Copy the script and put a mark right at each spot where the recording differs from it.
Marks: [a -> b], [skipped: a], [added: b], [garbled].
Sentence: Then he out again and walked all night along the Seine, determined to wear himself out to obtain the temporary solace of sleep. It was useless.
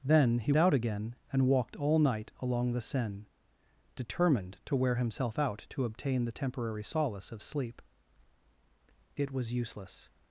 Then he out again and walked all night along the Seine, determined to wear himself out to obtain the temporary solace of sleep. It was useless.